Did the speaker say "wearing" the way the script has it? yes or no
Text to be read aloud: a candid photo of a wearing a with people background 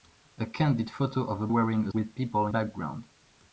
yes